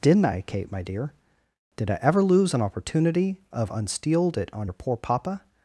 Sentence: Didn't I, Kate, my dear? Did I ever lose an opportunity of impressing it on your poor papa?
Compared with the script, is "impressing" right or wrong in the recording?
wrong